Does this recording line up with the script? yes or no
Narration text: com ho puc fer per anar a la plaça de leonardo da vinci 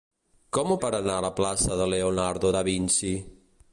no